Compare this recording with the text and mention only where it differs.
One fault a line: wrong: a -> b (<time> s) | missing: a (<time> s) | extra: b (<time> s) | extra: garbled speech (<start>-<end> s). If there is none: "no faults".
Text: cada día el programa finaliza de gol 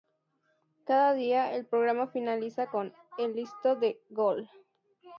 extra: con el listo (2.7 s)